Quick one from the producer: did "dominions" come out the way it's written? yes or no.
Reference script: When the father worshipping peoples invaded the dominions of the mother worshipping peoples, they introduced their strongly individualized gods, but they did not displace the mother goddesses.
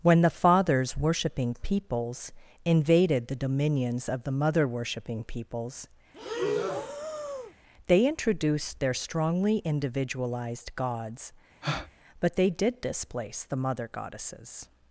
yes